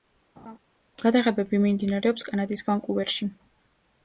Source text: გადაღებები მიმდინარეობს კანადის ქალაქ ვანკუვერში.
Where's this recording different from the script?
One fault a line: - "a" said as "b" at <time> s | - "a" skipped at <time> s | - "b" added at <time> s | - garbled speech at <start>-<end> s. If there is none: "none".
- "ქალაქ" skipped at 2.7 s